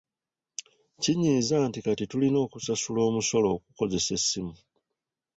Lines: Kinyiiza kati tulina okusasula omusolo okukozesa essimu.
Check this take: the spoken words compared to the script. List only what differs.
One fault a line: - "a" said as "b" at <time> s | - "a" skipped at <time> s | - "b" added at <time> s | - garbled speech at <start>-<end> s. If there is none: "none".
- "nti" added at 1.7 s